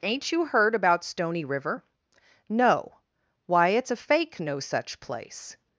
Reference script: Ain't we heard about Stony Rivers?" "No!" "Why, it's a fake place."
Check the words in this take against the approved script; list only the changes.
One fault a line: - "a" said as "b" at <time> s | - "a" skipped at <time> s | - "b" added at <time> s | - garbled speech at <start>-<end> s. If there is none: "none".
- "we" said as "you" at 0.3 s
- "Rivers" said as "River" at 1.4 s
- "no such" added at 4.4 s